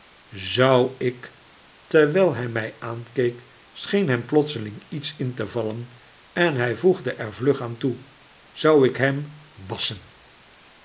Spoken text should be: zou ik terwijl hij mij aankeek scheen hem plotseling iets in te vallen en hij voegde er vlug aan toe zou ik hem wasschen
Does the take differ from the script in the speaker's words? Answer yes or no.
no